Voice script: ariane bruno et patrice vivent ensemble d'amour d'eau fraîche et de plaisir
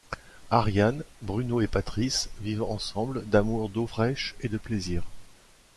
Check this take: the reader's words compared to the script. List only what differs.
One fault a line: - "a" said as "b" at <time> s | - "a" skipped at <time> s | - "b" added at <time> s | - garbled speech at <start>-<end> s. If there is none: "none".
none